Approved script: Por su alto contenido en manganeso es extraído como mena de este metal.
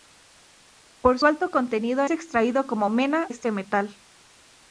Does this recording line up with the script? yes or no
no